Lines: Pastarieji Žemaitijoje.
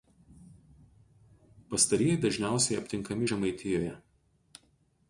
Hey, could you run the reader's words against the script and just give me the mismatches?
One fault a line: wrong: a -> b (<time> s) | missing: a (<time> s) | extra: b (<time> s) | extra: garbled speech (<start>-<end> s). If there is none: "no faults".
extra: dažniausiai aptinkami (2.2 s)